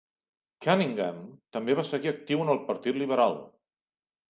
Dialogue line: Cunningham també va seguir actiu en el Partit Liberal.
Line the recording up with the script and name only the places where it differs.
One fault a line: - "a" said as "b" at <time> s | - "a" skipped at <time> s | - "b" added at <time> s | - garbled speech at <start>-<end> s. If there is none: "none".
none